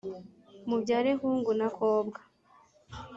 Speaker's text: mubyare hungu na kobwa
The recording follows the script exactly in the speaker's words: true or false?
true